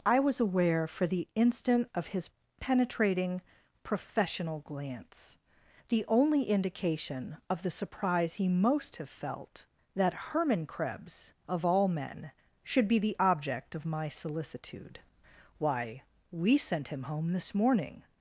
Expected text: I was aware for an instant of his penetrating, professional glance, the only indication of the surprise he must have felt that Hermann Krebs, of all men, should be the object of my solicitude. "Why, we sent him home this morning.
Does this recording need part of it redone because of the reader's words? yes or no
yes